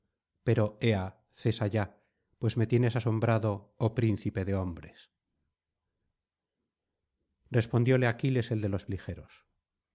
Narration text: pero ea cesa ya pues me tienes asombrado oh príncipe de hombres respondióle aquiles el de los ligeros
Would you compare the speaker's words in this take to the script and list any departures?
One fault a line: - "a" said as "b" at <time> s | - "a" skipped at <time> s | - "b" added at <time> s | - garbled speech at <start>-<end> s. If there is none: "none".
none